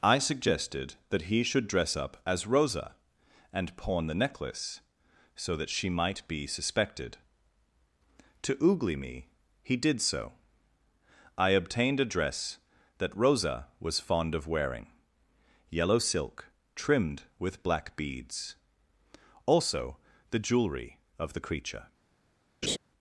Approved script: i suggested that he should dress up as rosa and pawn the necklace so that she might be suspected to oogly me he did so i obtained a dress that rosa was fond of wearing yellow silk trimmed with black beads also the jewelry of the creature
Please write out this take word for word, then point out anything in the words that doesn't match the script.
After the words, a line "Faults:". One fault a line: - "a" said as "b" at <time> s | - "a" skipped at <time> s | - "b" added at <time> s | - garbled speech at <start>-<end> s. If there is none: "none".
i suggested that he should dress up as rosa and pawn the necklace so that she might be suspected to oogly me he did so i obtained a dress that rosa was fond of wearing yellow silk trimmed with black beads also the jewelry of the creature
Faults:
none